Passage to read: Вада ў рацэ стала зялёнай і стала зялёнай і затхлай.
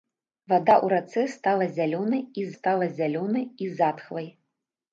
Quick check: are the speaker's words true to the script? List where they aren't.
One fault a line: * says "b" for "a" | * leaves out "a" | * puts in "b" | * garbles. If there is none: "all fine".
all fine